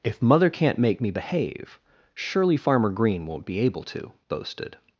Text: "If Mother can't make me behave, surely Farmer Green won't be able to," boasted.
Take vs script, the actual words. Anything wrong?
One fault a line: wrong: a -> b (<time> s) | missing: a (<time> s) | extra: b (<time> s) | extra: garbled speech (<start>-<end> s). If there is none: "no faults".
no faults